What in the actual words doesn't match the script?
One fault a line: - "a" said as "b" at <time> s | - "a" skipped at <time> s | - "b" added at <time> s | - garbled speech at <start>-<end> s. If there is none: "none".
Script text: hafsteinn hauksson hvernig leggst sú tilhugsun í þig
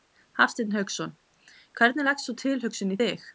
none